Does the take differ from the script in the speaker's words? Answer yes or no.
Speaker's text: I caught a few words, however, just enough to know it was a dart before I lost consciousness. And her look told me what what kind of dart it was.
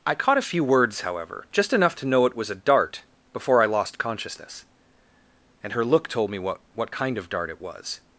no